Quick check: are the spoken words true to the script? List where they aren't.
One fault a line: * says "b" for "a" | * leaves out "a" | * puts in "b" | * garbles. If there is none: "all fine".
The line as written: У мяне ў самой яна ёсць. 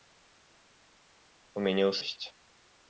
* leaves out "самой яна"